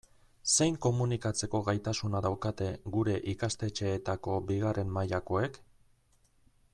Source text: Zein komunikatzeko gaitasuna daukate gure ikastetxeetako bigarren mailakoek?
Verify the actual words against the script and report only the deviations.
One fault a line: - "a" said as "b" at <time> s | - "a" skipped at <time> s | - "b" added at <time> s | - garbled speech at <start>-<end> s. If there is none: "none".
none